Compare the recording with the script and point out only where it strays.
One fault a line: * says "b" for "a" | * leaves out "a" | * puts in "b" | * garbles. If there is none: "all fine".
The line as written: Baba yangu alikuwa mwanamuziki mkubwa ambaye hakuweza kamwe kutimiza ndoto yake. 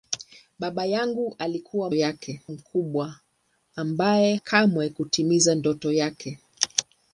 * says "yake" for "mwanamuziki"
* leaves out "hakuweza"